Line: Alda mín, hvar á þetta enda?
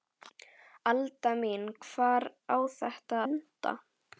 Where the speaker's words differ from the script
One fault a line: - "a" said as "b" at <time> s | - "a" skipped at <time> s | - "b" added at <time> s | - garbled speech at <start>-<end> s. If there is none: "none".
none